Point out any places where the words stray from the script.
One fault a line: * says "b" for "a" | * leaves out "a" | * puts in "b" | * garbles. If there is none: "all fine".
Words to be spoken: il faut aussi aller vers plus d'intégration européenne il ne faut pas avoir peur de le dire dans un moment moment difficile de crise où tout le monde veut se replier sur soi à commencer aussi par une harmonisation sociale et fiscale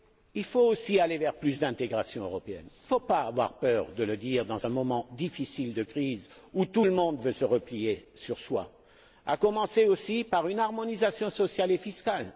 * leaves out "moment"